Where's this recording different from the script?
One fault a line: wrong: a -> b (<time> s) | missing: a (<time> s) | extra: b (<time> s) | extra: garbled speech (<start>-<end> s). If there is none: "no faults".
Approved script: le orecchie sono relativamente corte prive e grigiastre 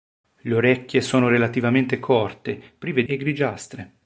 no faults